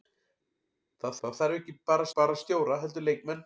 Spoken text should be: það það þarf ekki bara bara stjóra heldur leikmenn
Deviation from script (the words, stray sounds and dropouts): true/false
false